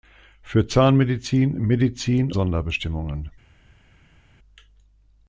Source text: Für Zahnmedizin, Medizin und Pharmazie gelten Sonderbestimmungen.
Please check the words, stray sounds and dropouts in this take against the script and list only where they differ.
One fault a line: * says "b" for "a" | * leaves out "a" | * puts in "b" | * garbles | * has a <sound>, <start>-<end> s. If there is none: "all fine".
* leaves out "und Pharmazie gelten"